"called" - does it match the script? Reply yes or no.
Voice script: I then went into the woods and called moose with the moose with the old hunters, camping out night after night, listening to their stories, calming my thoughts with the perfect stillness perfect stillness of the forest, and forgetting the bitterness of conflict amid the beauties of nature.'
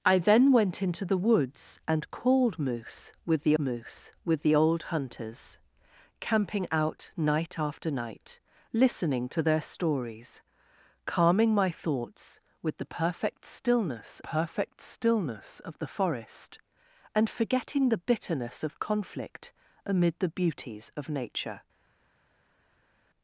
yes